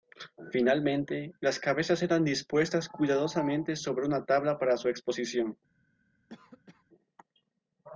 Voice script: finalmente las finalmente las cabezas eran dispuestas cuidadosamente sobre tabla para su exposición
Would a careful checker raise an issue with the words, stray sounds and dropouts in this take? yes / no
yes